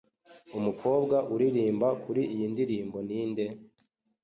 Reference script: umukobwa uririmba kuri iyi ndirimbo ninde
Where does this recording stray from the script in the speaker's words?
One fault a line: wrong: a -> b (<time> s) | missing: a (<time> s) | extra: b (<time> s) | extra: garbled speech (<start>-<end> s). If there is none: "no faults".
no faults